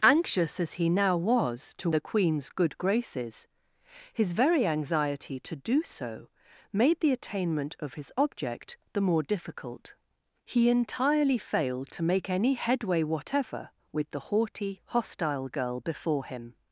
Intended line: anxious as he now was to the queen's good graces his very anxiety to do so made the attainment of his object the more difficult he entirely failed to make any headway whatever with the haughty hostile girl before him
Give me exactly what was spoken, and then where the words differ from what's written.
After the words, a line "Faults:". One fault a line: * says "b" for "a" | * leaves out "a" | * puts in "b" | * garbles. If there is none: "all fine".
anxious as he now was to the queen's good graces his very anxiety to do so made the attainment of his object the more difficult he entirely failed to make any headway whatever with the haughty hostile girl before him
Faults:
all fine